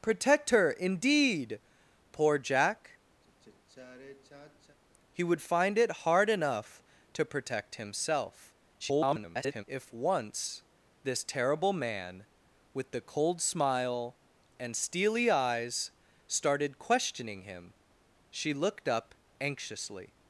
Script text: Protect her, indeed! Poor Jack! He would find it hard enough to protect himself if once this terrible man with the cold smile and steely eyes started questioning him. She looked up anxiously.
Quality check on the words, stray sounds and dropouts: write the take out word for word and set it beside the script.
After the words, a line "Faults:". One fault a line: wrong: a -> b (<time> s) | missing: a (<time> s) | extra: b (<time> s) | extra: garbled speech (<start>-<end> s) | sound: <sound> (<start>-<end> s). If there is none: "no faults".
Protect her, indeed! Poor Jack! He would find it hard enough to protect himself [garbled] if once this terrible man with the cold smile and steely eyes started questioning him. She looked up anxiously.
Faults:
sound: sigh (3.2-4.8 s)
extra: garbled speech (8.8-9.6 s)